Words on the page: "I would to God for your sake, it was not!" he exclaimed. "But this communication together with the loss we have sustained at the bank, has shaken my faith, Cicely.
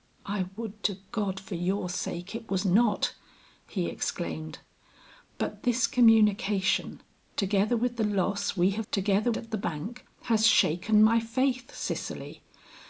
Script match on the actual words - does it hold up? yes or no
no